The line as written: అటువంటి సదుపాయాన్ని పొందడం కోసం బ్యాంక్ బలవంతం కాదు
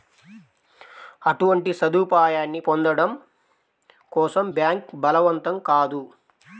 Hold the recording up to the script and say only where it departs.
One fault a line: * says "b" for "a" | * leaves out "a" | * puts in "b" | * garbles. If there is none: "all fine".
all fine